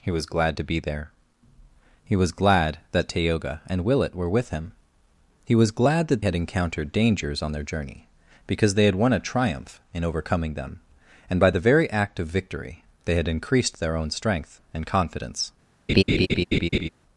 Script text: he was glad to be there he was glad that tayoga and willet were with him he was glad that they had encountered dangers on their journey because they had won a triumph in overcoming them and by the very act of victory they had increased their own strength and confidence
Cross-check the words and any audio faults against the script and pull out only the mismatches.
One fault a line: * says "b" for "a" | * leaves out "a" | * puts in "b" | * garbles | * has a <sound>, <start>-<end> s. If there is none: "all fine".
* leaves out "they"
* has a laugh, 15.9-16.9 s